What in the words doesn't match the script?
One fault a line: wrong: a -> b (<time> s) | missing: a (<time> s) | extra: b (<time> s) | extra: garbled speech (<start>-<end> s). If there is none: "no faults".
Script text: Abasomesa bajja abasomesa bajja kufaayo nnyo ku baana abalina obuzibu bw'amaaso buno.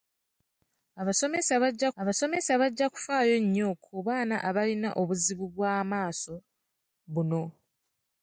no faults